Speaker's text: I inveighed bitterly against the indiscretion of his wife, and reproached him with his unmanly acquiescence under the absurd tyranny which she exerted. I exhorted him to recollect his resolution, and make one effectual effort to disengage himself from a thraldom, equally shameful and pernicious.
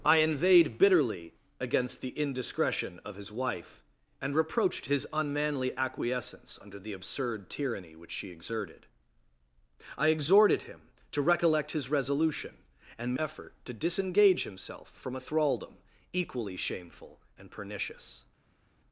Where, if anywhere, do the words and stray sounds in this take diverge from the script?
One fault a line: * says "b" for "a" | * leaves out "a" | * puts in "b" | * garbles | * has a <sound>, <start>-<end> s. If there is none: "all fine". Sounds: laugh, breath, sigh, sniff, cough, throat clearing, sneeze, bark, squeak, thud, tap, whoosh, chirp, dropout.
* leaves out "him with"
* leaves out "make one effectual"